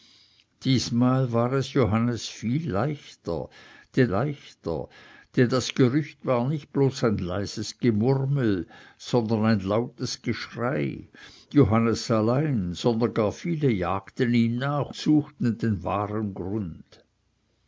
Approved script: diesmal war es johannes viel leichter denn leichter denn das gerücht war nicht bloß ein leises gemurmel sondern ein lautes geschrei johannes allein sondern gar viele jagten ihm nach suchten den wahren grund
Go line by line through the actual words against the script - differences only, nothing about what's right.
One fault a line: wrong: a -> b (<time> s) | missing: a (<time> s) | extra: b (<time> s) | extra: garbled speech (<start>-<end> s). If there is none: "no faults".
no faults